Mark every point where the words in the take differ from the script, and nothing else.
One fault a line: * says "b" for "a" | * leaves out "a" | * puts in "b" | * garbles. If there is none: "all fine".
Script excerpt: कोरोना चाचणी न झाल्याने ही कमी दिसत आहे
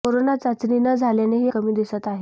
all fine